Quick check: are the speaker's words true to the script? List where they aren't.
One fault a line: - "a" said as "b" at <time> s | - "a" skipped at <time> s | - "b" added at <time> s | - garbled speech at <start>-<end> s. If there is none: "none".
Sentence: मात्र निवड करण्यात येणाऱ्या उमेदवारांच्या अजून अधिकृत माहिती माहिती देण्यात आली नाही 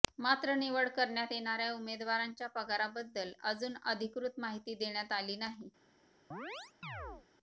- "पगाराबद्दल" added at 2.5 s
- "माहिती" skipped at 4.7 s